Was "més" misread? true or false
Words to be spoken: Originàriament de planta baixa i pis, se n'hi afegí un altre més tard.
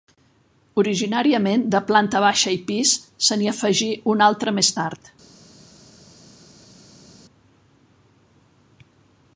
false